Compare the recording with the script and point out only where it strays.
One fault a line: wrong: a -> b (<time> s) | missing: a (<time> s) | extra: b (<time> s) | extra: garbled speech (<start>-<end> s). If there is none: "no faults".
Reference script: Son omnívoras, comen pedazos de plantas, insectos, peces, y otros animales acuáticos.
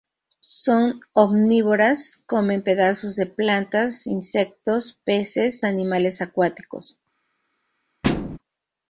missing: y otros (5.6 s)